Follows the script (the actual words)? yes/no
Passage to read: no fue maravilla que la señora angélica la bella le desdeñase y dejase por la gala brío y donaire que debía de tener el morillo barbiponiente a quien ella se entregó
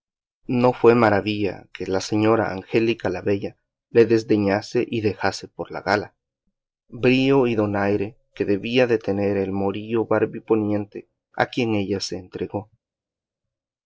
yes